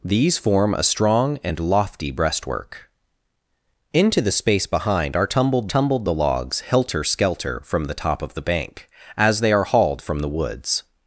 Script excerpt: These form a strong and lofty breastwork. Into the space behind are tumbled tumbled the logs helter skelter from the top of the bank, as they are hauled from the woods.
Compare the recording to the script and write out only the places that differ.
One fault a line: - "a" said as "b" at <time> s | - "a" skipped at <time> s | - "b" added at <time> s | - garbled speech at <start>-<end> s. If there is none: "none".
none